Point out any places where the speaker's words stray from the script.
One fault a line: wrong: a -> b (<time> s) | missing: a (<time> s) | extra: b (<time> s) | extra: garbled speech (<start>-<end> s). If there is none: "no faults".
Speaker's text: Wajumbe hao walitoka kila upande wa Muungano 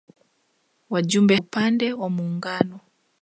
missing: hao walitoka kila (1.4 s)